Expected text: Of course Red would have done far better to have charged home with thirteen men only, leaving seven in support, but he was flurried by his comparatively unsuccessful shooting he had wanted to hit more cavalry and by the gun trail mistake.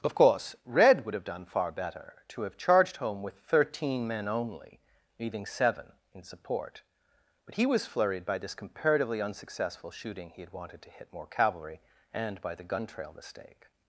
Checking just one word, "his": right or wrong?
wrong